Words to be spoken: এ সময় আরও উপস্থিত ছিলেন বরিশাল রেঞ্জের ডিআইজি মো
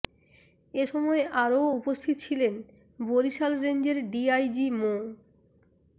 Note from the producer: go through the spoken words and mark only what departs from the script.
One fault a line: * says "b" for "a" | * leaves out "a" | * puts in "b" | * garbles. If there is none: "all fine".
all fine